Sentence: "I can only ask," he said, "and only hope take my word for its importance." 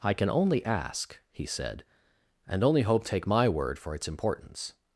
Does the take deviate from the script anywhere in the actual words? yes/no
no